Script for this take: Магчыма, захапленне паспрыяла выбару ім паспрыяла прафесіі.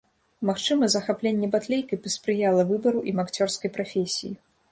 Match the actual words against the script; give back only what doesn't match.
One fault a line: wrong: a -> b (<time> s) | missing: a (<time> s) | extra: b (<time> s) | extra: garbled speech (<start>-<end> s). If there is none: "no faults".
extra: батлейкай (1.6 s)
wrong: паспрыяла -> акцёрскай (3.3 s)